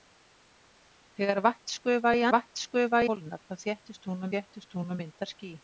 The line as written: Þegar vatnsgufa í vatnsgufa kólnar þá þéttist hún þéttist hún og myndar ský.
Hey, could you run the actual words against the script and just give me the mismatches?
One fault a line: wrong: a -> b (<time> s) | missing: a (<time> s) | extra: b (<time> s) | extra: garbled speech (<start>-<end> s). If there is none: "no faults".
no faults